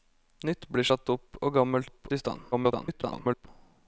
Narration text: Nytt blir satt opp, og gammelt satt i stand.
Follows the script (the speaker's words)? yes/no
no